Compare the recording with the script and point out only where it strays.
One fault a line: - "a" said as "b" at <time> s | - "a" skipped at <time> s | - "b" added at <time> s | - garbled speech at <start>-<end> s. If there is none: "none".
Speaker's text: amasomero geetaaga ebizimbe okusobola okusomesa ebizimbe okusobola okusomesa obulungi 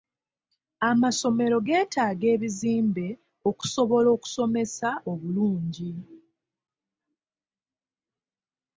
- "ebizimbe okusobola okusomesa" skipped at 4.9 s